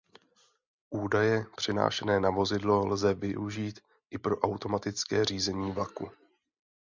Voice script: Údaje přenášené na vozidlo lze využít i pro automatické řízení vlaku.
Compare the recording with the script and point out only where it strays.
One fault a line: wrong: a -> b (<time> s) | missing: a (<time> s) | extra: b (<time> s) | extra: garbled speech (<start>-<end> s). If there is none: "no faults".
no faults